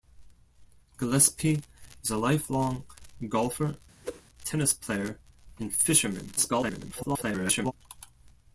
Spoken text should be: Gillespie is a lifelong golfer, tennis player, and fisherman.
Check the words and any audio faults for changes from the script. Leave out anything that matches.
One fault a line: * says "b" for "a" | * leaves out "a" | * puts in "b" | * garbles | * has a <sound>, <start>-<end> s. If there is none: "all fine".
* has a whoosh, 4.0-4.2 s
* garbles